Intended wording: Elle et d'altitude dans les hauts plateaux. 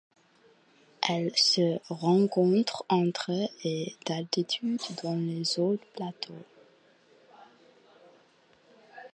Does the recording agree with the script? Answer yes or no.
no